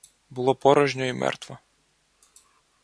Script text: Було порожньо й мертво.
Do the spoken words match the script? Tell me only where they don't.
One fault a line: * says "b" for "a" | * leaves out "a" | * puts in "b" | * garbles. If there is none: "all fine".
all fine